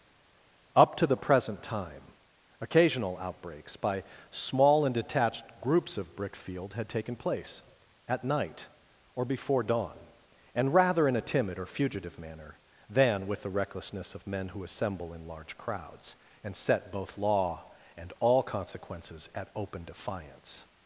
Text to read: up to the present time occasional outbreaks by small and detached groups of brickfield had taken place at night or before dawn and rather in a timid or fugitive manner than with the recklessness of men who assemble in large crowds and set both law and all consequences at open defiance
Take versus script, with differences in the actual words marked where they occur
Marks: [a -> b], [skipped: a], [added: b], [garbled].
up to the present time occasional outbreaks by small and detached groups of brickfield had taken place at night or before dawn and rather in a timid or fugitive manner than with the recklessness of men who assemble in large crowds and set both law and all consequences at open defiance